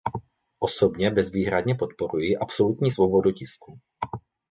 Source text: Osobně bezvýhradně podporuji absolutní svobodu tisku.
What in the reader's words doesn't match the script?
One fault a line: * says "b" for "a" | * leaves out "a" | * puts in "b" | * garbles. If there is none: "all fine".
all fine